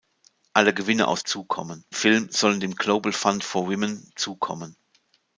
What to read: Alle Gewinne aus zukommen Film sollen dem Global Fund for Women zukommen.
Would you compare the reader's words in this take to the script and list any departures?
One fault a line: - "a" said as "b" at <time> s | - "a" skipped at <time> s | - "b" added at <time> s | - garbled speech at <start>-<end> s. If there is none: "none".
none